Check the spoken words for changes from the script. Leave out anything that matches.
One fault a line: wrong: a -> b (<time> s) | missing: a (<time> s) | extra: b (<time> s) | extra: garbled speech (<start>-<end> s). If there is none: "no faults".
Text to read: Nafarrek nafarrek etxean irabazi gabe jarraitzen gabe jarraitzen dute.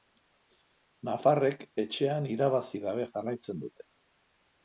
missing: nafarrek (1.6 s)
missing: gabe jarraitzen (3.6 s)